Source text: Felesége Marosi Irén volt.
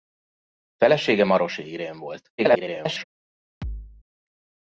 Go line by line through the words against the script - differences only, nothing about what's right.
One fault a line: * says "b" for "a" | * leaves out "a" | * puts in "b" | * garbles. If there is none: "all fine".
* garbles